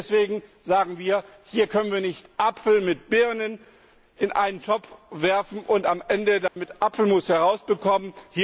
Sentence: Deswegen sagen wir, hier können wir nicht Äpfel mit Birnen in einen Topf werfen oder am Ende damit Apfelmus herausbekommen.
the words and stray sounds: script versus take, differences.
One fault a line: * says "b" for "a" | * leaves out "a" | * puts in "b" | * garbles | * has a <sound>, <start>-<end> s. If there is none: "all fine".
* says "und" for "oder"
* has a dropout, 6.5-6.6 s